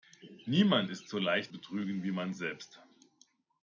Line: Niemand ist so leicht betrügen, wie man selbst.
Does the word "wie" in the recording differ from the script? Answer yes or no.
no